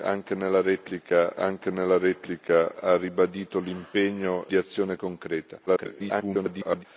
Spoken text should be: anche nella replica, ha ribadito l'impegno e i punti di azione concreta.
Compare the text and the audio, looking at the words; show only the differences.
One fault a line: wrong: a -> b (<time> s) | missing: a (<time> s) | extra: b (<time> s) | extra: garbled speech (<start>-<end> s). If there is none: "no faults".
extra: anche nella replica (1.4 s)
missing: e i punti (4.5 s)
extra: garbled speech (5.7-6.8 s)